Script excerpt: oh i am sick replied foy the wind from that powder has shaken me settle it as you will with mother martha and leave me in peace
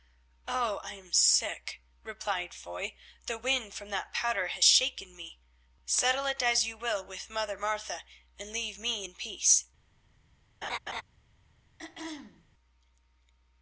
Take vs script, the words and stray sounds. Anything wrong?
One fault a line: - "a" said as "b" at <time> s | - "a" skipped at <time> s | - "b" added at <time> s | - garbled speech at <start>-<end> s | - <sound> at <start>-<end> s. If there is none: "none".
- laugh at 10.6-11.0 s
- throat clearing at 11.8-12.5 s